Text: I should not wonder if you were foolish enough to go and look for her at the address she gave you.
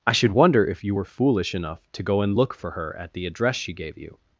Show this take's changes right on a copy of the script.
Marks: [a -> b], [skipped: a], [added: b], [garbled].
I should [skipped: not] wonder if you were foolish enough to go and look for her at the address she gave you.